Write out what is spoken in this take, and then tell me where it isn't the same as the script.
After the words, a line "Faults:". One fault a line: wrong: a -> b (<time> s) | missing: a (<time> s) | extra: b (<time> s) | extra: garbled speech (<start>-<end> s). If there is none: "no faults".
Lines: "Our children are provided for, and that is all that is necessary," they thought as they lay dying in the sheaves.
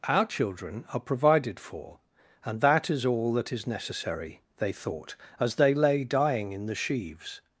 "Our children are provided for, and that is all that is necessary," they thought as they lay dying in the sheaves.
Faults:
no faults